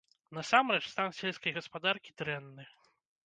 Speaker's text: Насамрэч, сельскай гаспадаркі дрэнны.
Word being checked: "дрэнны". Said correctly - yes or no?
yes